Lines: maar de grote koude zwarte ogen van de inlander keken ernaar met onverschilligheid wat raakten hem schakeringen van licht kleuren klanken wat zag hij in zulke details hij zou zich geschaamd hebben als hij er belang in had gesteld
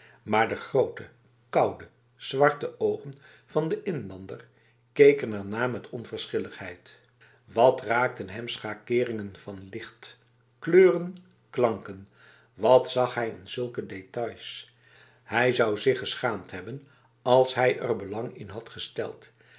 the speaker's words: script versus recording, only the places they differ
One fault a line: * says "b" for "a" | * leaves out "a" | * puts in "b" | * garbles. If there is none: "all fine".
all fine